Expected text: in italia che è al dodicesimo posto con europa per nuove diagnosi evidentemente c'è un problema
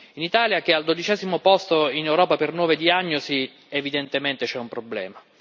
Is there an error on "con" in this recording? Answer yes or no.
yes